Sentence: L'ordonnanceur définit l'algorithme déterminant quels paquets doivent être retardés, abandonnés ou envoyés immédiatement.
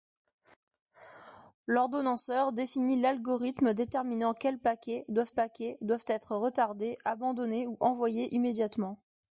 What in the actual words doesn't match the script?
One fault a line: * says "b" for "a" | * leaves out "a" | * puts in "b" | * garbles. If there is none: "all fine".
* puts in "paquets doivent"